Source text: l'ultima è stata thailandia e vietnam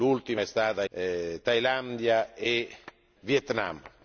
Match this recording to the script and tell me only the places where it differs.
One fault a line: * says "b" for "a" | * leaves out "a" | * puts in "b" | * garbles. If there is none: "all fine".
all fine